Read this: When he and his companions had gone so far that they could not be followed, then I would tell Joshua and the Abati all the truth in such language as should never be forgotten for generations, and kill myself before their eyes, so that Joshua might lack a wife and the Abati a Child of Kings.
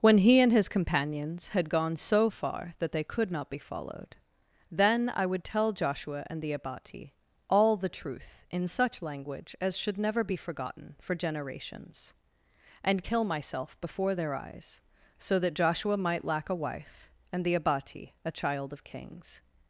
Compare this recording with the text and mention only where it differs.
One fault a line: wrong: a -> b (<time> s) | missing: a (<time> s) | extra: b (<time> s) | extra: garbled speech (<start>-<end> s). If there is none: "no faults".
no faults